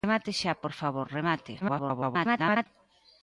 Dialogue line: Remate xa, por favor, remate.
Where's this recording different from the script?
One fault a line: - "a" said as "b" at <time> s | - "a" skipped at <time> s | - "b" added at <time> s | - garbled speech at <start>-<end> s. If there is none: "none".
- garbled speech at 1.6-2.7 s